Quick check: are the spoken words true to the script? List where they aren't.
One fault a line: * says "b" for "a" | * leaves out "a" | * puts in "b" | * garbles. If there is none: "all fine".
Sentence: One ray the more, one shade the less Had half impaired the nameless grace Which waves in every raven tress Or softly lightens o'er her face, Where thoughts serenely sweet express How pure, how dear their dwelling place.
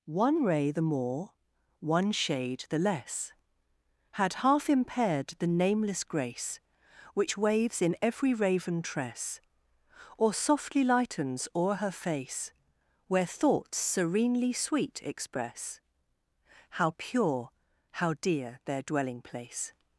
all fine